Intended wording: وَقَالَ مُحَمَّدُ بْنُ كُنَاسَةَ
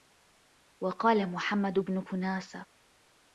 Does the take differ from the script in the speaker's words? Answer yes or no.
no